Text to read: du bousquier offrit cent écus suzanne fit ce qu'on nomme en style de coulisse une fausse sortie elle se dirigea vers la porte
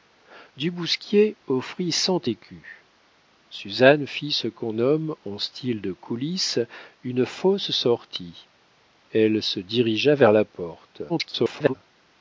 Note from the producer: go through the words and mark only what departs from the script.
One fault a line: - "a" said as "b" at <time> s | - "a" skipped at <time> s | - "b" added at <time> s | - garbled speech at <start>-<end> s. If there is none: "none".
- garbled speech at 11.1-11.7 s